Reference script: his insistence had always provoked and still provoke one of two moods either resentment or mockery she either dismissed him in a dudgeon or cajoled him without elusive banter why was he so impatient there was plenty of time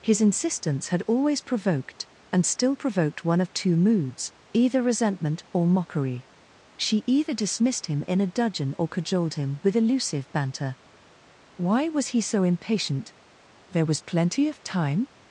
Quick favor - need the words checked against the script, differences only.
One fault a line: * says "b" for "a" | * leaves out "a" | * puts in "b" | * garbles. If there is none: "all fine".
* says "provoked" for "provoke"
* says "with" for "without"